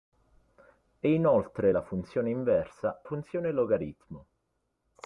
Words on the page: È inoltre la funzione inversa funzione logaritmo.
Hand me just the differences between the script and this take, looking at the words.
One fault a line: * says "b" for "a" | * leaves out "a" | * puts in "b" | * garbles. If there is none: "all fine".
all fine